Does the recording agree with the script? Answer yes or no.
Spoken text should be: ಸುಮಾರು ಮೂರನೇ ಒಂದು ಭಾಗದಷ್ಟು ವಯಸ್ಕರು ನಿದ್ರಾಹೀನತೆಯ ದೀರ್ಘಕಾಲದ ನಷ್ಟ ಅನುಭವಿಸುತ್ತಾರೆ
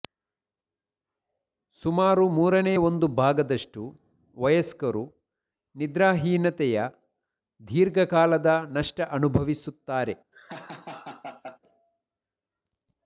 yes